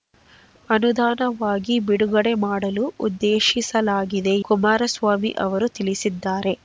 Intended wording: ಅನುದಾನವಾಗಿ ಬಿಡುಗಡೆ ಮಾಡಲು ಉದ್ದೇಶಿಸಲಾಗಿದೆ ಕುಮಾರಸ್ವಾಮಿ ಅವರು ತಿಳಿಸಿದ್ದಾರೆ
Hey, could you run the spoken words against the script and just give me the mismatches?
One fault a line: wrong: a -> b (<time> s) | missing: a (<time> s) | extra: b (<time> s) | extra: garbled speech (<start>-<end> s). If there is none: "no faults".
no faults